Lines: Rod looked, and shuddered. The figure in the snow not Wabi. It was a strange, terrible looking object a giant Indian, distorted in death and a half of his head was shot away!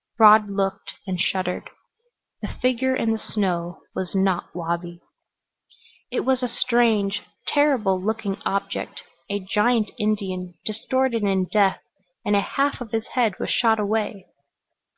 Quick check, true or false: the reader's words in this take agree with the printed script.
false